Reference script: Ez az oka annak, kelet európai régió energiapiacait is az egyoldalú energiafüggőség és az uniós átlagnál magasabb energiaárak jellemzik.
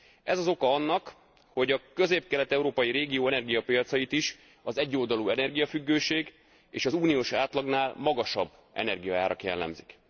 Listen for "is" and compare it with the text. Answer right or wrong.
right